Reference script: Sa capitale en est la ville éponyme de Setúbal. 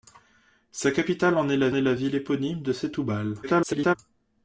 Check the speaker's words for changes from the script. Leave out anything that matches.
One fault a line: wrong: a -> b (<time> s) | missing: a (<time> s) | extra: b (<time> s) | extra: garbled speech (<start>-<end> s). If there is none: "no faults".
extra: est la (1.7 s)
extra: garbled speech (3.4-4.0 s)